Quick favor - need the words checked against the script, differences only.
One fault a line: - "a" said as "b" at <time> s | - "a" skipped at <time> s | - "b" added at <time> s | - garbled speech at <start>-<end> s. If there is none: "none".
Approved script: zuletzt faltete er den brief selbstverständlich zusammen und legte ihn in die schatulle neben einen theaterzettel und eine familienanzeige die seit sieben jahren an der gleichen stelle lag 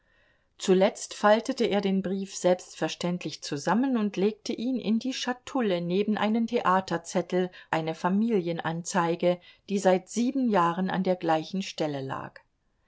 - "und" skipped at 7.5 s